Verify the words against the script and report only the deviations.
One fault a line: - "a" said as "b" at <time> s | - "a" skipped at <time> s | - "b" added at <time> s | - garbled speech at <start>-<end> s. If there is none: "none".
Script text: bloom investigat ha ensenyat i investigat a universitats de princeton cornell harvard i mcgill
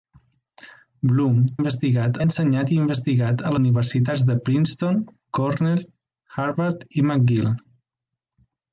none